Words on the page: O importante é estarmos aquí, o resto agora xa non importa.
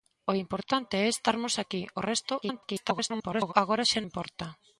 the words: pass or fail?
fail